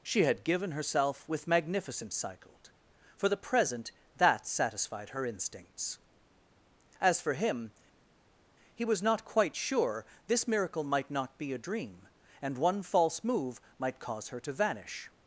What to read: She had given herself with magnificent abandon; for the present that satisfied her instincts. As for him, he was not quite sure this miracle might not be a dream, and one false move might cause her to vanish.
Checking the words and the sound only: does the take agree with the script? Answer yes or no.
no